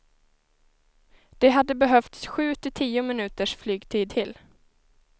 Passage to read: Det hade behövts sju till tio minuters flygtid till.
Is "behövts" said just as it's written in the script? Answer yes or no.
yes